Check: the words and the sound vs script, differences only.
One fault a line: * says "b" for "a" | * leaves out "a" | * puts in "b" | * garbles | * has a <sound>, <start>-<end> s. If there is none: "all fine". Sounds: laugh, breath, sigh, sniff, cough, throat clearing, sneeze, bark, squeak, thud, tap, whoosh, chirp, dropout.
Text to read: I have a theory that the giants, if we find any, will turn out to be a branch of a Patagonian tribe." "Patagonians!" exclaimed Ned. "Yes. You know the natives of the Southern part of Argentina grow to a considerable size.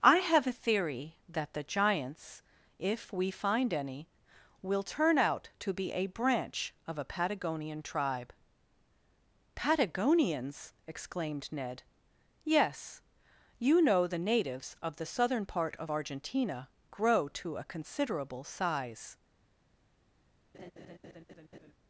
* has a laugh, 20.5-21.7 s